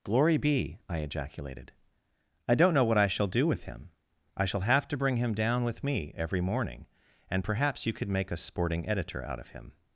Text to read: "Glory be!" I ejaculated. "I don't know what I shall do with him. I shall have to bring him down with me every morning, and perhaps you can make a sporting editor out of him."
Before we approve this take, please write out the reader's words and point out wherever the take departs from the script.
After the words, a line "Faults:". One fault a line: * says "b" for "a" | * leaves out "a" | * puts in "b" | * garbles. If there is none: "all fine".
"Glory be!" I ejaculated. "I don't know what I shall do with him. I shall have to bring him down with me every morning, and perhaps you could make a sporting editor out of him."
Faults:
* says "could" for "can"